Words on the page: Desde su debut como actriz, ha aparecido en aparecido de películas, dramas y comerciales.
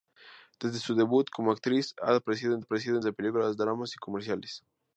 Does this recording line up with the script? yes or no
yes